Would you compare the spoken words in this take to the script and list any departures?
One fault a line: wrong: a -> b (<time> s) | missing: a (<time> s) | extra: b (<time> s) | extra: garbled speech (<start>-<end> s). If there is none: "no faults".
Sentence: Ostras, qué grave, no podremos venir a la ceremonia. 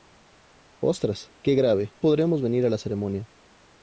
missing: no (1.9 s)